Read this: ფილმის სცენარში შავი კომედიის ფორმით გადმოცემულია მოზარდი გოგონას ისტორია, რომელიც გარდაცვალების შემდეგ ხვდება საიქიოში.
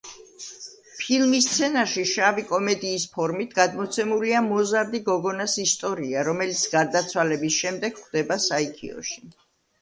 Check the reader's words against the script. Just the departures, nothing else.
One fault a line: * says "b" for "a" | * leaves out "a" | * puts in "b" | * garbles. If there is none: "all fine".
all fine